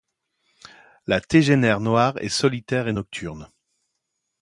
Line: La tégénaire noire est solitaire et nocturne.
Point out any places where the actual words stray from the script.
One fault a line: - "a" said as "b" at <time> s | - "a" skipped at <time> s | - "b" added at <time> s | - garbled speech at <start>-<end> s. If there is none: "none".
none